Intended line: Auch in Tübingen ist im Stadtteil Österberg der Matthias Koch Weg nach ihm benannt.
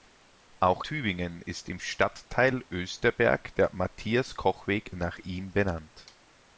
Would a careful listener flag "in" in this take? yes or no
yes